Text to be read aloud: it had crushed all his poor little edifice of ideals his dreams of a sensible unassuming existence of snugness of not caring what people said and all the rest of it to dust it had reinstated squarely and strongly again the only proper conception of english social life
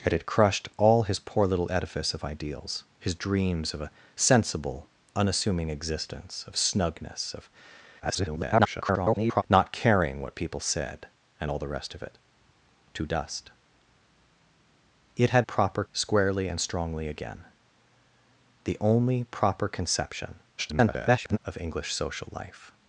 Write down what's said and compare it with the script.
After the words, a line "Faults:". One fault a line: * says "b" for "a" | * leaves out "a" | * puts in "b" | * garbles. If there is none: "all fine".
it had crushed all his poor little edifice of ideals his dreams of a sensible unassuming existence of snugness of [garbled] not caring what people said and all the rest of it to dust it had proper squarely and strongly again the only proper conception [garbled] of english social life
Faults:
* garbles
* says "proper" for "reinstated"
* garbles